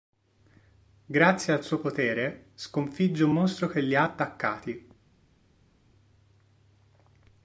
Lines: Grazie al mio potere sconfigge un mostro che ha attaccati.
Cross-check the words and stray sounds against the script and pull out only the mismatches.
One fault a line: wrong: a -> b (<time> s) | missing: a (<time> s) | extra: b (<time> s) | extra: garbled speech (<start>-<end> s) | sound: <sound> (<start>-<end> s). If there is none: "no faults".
wrong: mio -> suo (1.6 s)
extra: li (3.8 s)